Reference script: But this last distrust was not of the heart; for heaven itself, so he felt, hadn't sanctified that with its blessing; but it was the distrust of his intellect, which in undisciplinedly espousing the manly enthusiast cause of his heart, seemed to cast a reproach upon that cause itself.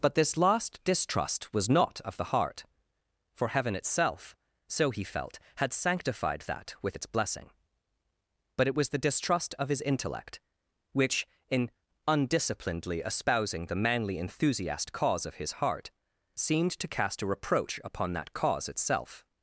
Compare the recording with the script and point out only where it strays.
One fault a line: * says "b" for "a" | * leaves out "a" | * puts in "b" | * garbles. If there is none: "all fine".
* says "had" for "hadn't"